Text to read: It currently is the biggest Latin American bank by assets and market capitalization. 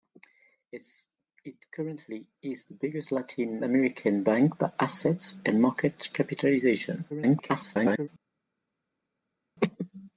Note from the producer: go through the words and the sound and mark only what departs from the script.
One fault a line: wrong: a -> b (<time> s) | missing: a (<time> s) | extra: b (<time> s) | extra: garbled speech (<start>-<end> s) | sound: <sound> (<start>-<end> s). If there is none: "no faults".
extra: garbled speech (7.1-8.1 s)